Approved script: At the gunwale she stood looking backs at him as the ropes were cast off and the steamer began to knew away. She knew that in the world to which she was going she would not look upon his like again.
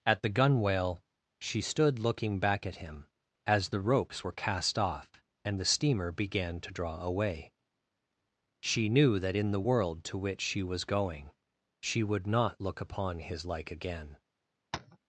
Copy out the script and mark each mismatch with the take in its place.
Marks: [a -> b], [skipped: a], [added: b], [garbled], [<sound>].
At the gunwale she stood looking [backs -> back] at him as the ropes were cast off and the steamer began to [knew -> draw] away. She knew that in the world to which she was going she would not look upon his like again. [tap]